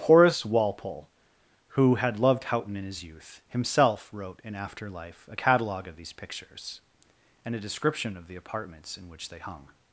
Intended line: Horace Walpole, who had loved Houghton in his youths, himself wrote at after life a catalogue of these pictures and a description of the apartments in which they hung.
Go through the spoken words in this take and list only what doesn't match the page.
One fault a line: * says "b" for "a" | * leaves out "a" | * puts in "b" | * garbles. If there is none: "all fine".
* says "youth" for "youths"
* says "in" for "at"